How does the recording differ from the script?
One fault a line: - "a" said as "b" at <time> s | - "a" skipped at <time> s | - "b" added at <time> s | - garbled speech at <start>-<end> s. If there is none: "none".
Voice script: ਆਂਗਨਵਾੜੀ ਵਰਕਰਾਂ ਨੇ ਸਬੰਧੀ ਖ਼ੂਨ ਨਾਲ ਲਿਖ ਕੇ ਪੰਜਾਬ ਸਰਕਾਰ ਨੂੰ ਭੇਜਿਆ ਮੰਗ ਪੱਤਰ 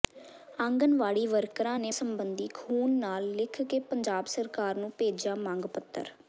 none